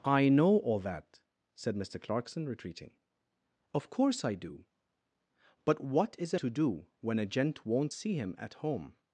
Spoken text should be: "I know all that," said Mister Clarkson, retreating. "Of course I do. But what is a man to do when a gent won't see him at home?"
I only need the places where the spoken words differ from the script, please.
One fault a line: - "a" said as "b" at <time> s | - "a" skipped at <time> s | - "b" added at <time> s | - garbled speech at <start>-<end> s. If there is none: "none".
- "man" skipped at 6.4 s